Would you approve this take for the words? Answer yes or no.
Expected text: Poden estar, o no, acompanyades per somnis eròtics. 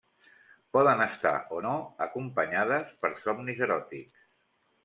yes